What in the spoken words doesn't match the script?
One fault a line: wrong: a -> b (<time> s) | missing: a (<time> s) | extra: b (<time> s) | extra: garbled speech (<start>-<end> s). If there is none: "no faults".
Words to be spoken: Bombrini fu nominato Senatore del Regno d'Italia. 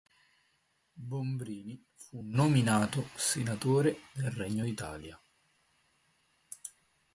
no faults